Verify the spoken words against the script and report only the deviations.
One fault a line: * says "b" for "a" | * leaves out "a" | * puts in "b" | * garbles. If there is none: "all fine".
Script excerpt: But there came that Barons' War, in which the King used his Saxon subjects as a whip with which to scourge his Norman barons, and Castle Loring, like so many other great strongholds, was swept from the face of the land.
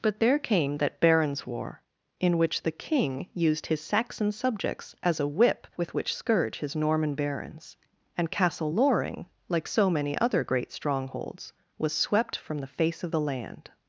* leaves out "to"